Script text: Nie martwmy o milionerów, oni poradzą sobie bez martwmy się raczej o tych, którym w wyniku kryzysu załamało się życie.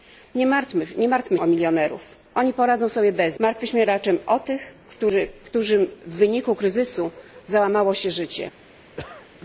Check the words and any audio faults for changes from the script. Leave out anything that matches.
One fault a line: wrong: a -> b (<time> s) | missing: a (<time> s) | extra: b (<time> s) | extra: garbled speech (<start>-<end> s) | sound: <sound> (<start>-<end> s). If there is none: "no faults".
sound: cough (9.0-9.3 s)